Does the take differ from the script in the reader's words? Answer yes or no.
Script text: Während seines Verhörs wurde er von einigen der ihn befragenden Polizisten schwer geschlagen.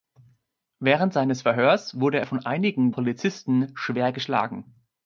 yes